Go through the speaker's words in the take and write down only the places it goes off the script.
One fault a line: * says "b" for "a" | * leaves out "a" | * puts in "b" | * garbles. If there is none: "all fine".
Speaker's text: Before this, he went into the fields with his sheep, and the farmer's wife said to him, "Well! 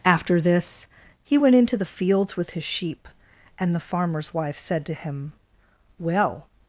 * says "After" for "Before"